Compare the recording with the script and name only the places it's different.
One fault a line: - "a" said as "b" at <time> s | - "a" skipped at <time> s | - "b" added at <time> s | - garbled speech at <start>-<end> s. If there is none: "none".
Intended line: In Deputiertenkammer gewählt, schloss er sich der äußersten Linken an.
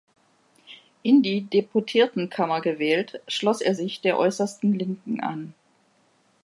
- "die" added at 1.2 s